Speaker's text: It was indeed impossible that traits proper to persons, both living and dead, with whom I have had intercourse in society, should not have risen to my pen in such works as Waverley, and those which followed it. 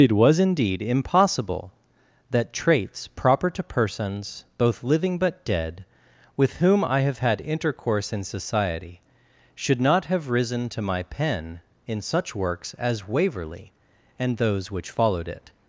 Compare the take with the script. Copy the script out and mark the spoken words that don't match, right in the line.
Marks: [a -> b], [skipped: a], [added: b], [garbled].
It was indeed impossible that traits proper to persons, both living [and -> but] dead, with whom I have had intercourse in society, should not have risen to my pen in such works as Waverley, and those which followed it.